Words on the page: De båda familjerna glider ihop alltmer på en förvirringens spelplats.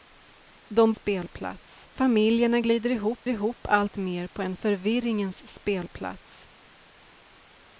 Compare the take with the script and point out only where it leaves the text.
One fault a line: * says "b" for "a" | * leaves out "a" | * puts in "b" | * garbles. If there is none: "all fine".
* says "spelplats" for "båda"
* puts in "ihop"